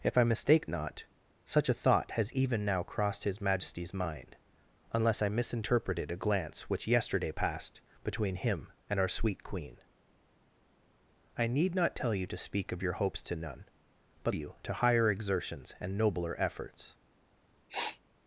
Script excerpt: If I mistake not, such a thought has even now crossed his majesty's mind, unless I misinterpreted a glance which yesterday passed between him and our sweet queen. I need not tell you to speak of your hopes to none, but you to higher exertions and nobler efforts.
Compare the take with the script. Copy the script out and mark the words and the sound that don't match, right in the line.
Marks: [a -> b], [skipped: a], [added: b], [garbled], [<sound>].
If I mistake not, such a thought has even now crossed his majesty's mind, unless I misinterpreted a glance which yesterday passed between him and our sweet queen. I need not tell you to speak of your hopes to none, but you to higher exertions and nobler efforts. [sniff]